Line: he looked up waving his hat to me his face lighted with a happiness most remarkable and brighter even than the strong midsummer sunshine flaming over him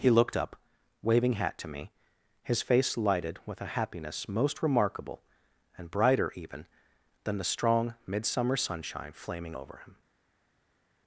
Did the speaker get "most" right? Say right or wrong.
right